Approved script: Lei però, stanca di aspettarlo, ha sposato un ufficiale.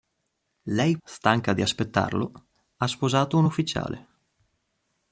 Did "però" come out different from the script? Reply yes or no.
yes